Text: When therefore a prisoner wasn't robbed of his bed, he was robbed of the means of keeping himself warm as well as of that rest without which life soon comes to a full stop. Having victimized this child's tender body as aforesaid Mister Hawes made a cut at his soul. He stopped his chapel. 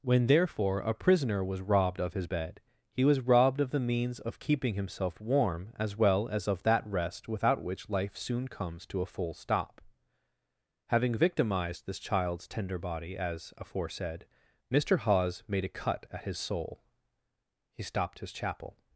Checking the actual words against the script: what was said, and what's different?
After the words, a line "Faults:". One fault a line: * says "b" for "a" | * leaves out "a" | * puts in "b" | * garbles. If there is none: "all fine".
When therefore a prisoner was robbed of his bed, he was robbed of the means of keeping himself warm as well as of that rest without which life soon comes to a full stop. Having victimized this child's tender body as aforesaid Mister Hawes made a cut at his soul. He stopped his chapel.
Faults:
* says "was" for "wasn't"